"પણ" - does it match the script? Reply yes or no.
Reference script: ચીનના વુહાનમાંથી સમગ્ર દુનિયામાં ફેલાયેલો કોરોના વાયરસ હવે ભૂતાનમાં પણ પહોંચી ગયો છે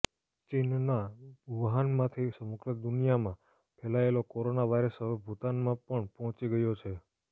yes